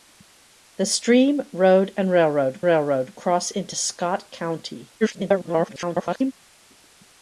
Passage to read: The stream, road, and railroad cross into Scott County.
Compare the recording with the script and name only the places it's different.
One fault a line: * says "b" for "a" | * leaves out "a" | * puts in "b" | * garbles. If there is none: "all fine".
* puts in "railroad"
* garbles